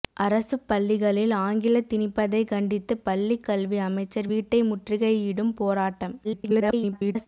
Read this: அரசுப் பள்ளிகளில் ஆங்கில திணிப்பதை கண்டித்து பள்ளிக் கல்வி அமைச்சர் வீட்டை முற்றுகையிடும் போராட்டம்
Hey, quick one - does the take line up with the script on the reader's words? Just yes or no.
no